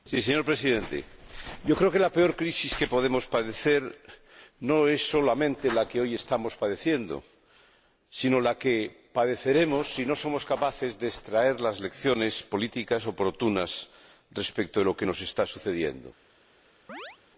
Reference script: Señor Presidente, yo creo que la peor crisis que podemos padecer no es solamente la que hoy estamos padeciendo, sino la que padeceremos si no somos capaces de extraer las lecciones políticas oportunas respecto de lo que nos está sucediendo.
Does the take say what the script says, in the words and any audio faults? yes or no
no